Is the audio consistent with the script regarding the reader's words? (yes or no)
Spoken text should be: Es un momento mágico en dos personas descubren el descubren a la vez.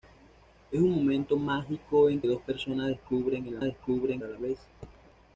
yes